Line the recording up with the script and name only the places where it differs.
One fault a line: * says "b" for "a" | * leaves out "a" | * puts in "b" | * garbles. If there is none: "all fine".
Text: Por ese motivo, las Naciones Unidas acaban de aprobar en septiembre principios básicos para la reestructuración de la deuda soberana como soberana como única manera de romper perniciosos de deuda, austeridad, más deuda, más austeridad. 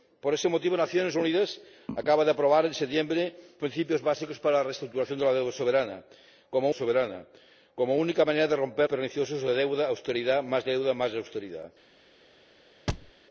all fine